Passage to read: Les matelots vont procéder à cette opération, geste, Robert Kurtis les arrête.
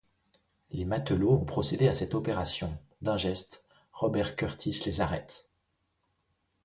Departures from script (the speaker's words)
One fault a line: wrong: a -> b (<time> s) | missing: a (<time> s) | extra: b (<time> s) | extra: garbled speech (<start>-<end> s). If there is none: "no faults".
extra: d'un (3.0 s)